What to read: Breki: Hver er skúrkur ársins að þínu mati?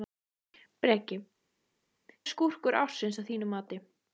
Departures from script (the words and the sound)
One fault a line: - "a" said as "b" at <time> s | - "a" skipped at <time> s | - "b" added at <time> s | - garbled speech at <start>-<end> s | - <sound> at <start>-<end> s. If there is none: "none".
- "Hver" skipped at 1.2 s